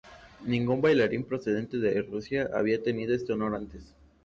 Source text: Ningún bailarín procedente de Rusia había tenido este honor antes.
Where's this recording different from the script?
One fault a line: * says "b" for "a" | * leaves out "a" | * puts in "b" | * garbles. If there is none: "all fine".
all fine